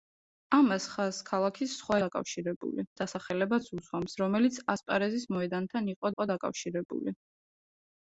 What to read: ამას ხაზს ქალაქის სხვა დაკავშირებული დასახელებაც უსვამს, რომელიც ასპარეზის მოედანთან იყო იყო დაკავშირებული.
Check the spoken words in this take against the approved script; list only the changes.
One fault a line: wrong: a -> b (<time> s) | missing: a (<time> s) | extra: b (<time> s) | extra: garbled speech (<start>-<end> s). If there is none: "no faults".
no faults